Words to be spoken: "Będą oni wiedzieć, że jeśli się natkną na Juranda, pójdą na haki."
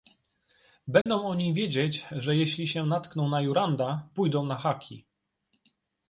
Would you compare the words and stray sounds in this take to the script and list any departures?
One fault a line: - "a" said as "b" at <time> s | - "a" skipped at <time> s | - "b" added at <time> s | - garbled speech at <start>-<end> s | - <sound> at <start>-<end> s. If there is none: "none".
- dropout at 1.0-1.1 s